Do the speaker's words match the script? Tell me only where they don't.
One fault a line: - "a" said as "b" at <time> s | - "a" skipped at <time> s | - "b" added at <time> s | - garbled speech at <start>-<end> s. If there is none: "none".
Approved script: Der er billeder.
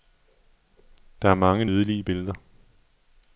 - "mange nydelige" added at 1.4 s